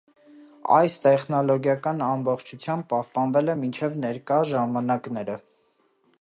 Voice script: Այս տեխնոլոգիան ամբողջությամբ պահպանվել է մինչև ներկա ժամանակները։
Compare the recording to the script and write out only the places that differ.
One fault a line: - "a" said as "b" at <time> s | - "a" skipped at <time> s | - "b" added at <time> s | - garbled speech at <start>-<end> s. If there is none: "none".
none